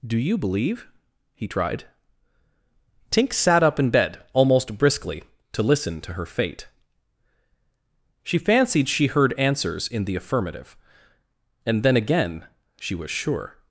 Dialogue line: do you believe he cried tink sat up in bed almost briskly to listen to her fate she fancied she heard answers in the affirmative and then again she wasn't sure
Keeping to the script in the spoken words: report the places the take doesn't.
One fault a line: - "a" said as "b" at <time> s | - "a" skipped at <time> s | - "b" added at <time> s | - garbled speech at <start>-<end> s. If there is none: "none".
- "cried" said as "tried" at 1.5 s
- "wasn't" said as "was" at 12.9 s